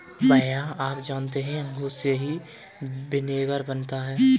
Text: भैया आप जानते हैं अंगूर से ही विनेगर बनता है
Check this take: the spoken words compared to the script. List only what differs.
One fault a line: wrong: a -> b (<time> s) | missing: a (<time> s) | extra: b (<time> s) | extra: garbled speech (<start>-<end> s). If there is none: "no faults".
no faults